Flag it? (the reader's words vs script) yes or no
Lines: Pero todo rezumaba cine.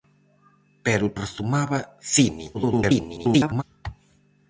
yes